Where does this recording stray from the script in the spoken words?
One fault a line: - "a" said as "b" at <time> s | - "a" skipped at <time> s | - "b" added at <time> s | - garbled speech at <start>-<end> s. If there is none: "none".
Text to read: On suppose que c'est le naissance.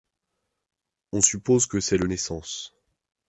none